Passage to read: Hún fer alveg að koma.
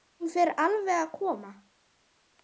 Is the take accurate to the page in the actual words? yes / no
yes